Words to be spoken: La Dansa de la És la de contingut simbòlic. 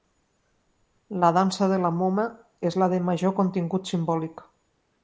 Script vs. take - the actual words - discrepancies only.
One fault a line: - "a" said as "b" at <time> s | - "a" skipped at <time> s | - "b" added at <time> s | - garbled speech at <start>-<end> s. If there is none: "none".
- "Moma" added at 2.0 s
- "major" added at 3.1 s